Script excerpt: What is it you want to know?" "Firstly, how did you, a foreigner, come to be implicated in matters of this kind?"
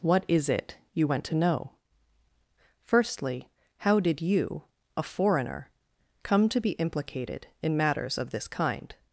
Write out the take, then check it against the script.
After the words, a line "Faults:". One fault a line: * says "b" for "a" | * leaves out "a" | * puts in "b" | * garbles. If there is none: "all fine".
What is it you went to know?" "Firstly, how did you, a foreigner, come to be implicated in matters of this kind?"
Faults:
* says "went" for "want"